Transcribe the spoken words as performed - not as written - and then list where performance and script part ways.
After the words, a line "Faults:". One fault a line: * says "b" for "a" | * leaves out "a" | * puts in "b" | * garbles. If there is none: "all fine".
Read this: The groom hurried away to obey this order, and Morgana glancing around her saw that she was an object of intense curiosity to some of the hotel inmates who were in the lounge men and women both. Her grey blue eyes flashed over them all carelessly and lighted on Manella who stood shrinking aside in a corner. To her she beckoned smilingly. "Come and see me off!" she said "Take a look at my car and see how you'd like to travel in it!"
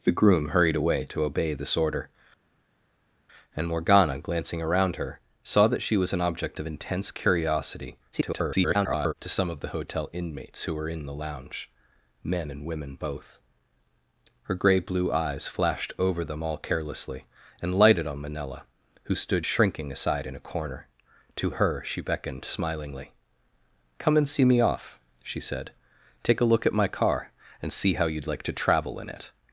The groom hurried away to obey this order, and Morgana glancing around her saw that she was an object of intense curiosity [garbled] to some of the hotel inmates who were in the lounge men and women both. Her grey blue eyes flashed over them all carelessly and lighted on Manella who stood shrinking aside in a corner. To her she beckoned smilingly. "Come and see me off!" she said "Take a look at my car and see how you'd like to travel in it!"
Faults:
* garbles